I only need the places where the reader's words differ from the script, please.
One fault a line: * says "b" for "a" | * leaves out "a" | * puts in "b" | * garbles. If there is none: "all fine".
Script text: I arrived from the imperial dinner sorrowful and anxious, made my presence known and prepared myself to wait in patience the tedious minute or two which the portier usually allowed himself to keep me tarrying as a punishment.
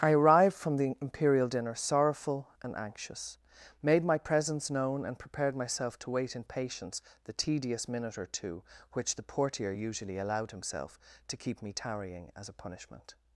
all fine